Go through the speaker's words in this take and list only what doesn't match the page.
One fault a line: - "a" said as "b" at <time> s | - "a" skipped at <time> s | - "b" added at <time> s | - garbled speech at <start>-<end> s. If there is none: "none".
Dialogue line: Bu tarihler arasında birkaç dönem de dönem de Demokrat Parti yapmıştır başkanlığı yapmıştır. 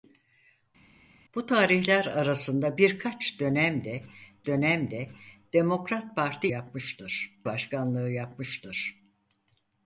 none